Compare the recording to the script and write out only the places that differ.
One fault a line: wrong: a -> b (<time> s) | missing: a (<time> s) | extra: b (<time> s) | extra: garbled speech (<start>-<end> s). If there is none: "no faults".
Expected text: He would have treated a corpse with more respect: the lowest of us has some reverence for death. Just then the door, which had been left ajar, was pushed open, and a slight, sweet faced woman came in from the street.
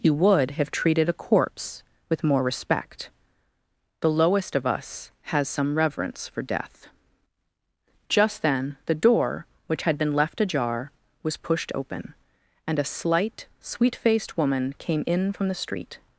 no faults